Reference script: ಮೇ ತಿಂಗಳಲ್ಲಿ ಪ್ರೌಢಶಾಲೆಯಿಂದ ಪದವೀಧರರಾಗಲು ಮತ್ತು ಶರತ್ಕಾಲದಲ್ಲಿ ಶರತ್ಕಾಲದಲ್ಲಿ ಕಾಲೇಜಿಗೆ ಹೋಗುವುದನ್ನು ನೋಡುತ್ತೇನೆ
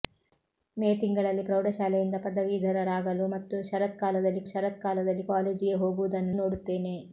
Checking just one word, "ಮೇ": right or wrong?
right